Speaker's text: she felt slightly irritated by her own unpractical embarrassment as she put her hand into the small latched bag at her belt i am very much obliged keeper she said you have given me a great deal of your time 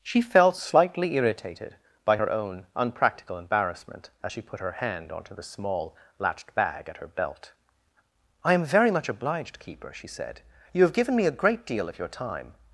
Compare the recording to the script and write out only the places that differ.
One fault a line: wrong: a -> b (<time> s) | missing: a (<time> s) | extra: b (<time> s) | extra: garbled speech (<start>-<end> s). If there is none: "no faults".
wrong: into -> onto (5.1 s)